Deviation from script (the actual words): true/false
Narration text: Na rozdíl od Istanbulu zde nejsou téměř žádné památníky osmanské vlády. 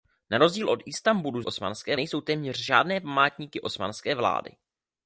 true